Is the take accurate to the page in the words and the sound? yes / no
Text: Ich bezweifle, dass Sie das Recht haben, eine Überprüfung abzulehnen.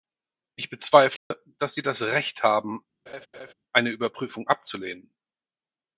no